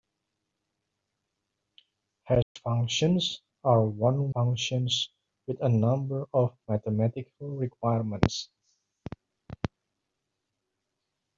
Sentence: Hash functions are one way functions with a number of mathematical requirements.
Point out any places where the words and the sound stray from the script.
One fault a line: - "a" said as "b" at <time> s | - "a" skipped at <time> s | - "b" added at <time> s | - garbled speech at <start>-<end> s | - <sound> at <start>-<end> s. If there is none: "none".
- dropout at 2.4-2.6 s
- "way" skipped at 4.3 s